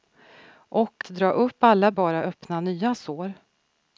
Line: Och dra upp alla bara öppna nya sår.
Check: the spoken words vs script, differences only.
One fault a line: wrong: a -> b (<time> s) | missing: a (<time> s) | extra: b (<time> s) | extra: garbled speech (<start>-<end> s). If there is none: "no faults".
no faults